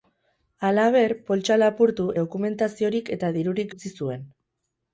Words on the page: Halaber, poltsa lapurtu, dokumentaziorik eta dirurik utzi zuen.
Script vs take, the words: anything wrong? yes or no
no